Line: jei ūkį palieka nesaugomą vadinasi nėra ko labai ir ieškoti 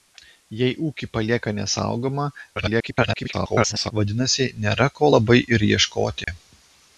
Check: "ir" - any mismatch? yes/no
no